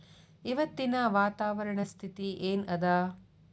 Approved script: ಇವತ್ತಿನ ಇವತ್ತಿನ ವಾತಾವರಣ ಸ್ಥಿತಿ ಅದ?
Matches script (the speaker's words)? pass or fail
fail